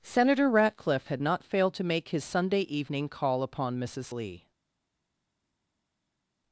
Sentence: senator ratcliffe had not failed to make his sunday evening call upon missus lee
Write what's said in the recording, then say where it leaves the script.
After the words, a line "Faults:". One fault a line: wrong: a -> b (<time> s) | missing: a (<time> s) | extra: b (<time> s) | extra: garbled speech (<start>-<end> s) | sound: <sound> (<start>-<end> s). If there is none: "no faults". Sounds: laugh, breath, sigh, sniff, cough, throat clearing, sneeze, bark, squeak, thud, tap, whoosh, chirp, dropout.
senator ratcliffe had not failed to make his sunday evening call upon missus lee
Faults:
no faults